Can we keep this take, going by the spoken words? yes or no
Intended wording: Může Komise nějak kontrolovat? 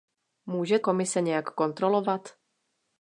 yes